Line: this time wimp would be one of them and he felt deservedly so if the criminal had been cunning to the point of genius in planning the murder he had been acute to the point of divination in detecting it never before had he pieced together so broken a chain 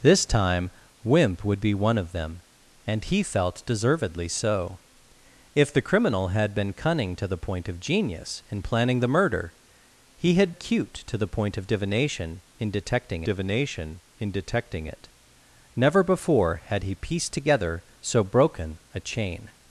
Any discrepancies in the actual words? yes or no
yes